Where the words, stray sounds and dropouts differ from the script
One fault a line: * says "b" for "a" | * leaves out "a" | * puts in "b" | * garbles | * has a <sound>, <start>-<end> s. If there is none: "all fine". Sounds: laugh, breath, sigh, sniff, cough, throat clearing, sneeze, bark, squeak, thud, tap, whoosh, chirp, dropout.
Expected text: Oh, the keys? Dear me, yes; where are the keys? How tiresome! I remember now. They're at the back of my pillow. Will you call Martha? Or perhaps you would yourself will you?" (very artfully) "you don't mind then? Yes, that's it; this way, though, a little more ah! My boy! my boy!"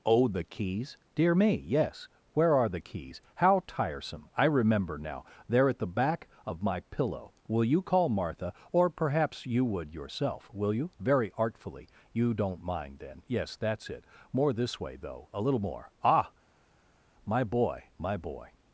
* puts in "more"